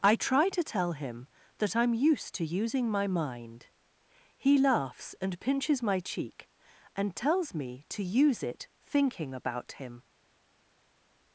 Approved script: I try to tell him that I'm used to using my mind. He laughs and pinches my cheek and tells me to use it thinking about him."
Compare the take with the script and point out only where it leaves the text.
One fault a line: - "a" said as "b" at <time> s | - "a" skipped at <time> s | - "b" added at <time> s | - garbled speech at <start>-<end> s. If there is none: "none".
none